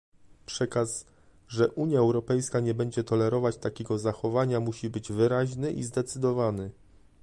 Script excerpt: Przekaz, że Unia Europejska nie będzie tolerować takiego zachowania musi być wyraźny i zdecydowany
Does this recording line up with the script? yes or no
yes